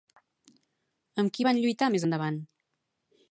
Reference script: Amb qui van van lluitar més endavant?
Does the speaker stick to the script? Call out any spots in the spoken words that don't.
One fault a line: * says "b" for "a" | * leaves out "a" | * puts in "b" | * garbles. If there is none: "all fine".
* leaves out "van"